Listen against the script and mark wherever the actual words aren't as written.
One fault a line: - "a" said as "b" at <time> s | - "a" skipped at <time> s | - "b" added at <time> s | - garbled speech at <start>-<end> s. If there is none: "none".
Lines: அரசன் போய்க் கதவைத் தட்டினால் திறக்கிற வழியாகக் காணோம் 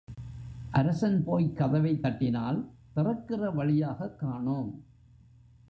none